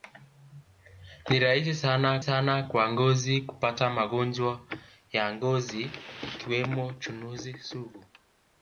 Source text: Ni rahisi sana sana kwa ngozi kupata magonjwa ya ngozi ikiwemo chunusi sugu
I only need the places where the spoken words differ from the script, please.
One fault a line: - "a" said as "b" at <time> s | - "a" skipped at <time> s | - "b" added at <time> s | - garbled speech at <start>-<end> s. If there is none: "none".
none